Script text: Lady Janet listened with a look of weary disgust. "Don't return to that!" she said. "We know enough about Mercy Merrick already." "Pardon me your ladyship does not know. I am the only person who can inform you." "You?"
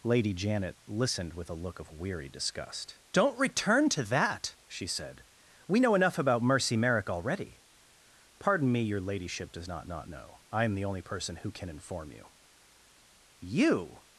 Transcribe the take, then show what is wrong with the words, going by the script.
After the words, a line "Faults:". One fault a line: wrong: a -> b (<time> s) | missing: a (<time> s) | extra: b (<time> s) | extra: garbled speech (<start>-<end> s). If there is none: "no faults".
Lady Janet listened with a look of weary disgust. "Don't return to that!" she said. "We know enough about Mercy Merrick already." "Pardon me your ladyship does not not know. I am the only person who can inform you." "You?"
Faults:
extra: not (9.9 s)